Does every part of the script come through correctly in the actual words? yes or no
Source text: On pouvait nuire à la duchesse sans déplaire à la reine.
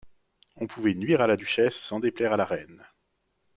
yes